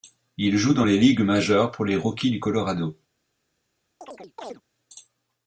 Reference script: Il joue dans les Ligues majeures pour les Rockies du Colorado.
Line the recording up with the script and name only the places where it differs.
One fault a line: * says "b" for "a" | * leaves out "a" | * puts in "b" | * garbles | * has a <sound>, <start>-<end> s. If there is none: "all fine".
* has a chirp, 4.0-4.6 s